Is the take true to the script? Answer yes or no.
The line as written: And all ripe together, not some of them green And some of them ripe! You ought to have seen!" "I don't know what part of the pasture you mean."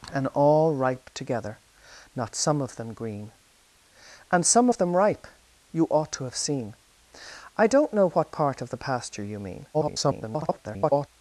no